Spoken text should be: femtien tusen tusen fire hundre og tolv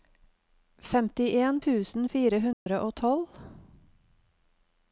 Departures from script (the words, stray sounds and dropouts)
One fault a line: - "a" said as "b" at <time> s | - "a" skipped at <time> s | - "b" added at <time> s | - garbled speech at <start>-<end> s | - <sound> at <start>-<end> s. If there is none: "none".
- "tusen" skipped at 2.0 s
- dropout at 2.5-2.7 s